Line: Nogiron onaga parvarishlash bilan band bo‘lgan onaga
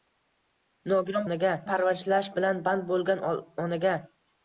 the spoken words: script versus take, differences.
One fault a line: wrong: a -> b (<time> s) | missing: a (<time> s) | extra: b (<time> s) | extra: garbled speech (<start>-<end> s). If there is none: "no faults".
no faults